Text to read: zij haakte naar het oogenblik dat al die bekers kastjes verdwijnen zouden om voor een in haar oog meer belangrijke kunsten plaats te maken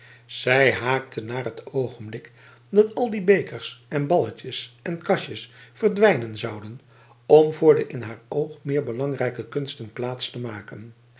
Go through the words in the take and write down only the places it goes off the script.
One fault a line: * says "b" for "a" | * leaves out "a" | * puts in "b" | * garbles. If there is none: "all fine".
* puts in "en balletjes en"
* says "de" for "een"